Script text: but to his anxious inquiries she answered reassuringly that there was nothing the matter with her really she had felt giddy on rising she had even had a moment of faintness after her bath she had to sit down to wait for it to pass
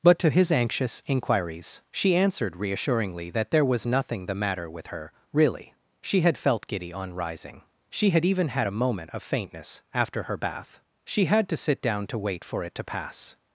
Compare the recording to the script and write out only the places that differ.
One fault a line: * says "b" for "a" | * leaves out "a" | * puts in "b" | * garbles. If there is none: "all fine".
all fine